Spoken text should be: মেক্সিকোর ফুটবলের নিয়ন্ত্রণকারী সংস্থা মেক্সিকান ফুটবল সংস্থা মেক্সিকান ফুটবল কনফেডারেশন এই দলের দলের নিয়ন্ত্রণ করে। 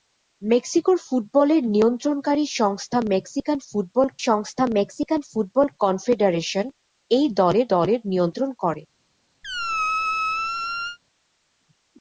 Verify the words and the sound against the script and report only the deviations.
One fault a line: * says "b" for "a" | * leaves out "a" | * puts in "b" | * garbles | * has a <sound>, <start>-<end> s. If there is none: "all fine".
* has a squeak, 9.4-11.0 s